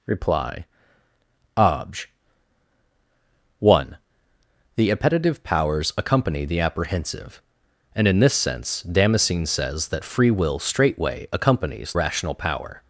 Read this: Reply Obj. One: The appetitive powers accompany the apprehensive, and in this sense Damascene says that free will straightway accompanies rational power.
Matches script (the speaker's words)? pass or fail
pass